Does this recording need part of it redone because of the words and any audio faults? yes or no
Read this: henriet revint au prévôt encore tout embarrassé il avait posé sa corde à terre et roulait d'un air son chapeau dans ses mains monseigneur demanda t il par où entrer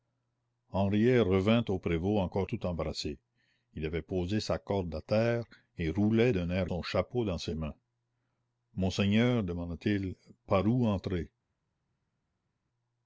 no